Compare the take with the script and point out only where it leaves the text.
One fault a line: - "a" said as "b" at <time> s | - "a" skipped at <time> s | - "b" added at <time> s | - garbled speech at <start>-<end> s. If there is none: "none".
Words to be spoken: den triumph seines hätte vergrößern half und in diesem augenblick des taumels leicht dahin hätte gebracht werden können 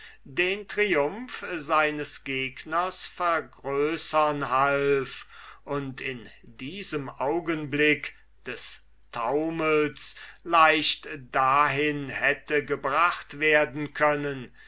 - "hätte" said as "gegners" at 2.2 s